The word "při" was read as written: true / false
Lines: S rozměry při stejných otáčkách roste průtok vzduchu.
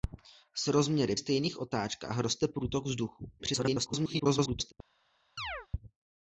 false